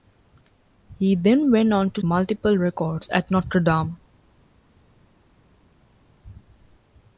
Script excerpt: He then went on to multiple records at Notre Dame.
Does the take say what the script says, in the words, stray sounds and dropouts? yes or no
yes